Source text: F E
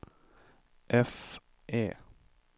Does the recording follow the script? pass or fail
pass